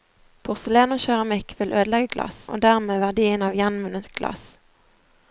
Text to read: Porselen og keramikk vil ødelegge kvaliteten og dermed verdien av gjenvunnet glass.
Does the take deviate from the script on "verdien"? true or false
false